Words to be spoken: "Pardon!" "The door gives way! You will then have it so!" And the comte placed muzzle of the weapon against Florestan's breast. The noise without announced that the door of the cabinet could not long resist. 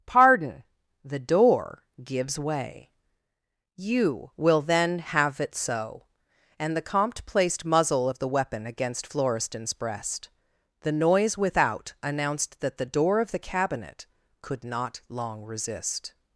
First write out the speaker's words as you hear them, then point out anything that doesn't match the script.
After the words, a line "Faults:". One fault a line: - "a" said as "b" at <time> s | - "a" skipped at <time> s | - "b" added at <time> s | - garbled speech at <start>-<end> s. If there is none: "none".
"Pardon!" "The door gives way! You will then have it so!" And the comte placed muzzle of the weapon against Florestan's breast. The noise without announced that the door of the cabinet could not long resist.
Faults:
none